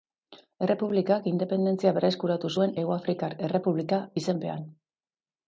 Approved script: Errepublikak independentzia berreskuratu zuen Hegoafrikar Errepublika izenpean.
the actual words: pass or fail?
pass